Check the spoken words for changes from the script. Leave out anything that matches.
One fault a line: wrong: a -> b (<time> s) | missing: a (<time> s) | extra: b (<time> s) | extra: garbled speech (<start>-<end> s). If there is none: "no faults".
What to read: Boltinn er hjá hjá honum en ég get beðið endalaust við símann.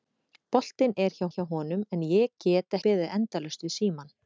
no faults